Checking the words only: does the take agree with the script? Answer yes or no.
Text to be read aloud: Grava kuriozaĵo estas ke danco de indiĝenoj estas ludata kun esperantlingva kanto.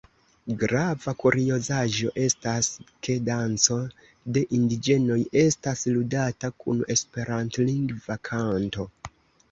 yes